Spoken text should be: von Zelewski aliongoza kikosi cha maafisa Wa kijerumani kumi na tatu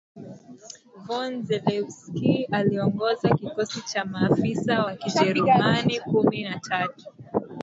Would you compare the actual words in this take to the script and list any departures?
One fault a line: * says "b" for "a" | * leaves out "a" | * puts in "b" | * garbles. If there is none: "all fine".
all fine